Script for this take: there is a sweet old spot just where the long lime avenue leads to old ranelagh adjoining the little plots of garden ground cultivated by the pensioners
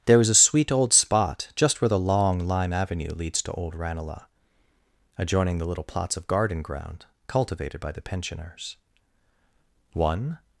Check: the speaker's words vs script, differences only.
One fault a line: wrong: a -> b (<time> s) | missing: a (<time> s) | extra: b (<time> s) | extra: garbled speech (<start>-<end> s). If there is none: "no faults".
extra: one (9.9 s)